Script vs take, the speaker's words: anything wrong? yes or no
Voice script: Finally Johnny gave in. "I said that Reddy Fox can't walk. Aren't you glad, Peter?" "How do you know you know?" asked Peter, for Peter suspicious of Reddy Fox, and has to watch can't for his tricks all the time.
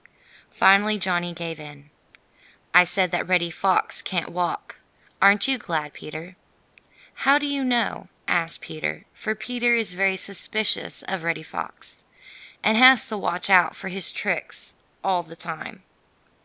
yes